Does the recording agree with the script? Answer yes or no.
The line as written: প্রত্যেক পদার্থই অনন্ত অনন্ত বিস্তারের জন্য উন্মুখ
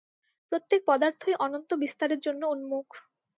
no